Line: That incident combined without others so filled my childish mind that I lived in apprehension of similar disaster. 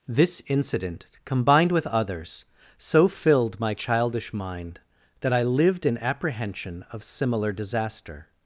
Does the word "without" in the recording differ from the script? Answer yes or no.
yes